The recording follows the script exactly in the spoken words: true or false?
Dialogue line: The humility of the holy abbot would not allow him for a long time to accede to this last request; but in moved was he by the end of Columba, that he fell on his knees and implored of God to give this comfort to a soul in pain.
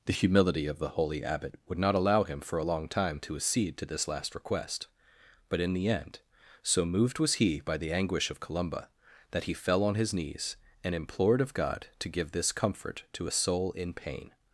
false